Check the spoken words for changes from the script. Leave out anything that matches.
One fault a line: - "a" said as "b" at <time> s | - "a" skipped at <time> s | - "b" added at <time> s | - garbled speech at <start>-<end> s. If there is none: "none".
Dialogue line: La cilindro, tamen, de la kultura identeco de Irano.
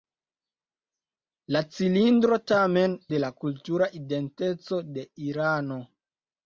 none